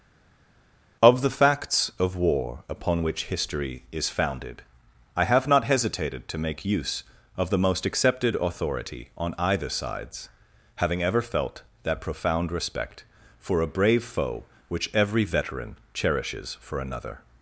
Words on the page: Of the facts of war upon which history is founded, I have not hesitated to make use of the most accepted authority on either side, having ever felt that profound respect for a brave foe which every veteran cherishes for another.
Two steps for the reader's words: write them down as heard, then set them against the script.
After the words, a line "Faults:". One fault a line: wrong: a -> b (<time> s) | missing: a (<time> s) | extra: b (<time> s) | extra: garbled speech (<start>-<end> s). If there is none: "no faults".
Of the facts of war upon which history is founded, I have not hesitated to make use of the most accepted authority on either sides, having ever felt that profound respect for a brave foe which every veteran cherishes for another.
Faults:
wrong: side -> sides (9.7 s)